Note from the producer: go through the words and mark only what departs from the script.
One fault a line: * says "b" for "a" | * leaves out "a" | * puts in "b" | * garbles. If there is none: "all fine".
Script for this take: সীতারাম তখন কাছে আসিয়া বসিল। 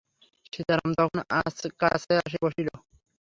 all fine